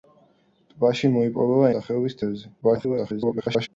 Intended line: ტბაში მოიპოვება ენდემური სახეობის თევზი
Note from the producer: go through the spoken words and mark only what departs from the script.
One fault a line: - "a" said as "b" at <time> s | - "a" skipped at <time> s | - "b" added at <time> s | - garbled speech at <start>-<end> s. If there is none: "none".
- "ენდემური" skipped at 1.7 s
- garbled speech at 2.6-3.7 s